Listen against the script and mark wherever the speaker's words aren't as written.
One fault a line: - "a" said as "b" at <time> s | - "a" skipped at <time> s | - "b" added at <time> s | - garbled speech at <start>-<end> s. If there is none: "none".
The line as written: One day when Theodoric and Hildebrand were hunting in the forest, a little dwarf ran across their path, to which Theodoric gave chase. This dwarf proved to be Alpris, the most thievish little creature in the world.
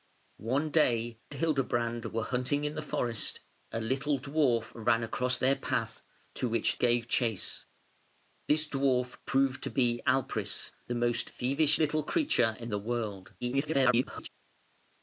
- "when Theodoric and" skipped at 1.2 s
- "Theodoric" skipped at 6.7 s
- garbled speech at 13.4-14.3 s